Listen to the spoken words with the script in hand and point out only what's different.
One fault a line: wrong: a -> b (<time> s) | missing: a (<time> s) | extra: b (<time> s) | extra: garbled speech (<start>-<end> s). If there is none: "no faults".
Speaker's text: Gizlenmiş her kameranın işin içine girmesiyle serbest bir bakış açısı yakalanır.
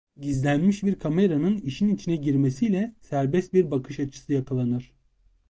wrong: her -> bir (0.8 s)